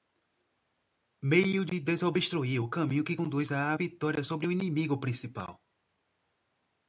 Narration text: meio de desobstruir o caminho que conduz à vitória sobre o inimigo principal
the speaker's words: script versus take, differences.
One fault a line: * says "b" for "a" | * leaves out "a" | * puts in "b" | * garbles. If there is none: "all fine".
all fine